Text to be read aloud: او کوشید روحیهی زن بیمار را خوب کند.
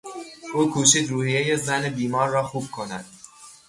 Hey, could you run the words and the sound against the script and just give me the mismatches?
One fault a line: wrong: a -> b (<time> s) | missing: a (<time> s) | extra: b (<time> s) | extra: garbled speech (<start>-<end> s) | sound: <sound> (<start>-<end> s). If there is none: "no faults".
no faults